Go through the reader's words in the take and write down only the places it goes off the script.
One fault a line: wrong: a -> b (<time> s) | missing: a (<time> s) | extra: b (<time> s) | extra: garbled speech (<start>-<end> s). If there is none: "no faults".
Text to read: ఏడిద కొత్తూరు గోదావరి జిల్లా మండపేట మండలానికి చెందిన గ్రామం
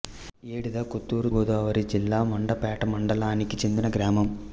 no faults